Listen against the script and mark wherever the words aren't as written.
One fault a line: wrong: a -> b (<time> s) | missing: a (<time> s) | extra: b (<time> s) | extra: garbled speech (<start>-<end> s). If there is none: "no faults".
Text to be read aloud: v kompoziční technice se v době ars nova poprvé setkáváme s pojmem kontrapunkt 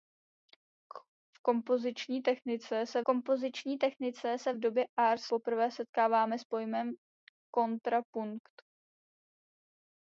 extra: kompoziční technice se (3.0 s)
missing: nova (5.2 s)